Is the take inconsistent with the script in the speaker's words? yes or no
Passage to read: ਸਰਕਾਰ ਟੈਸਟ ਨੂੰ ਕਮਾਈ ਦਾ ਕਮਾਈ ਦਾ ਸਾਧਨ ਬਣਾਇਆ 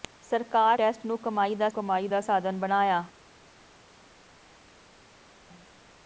no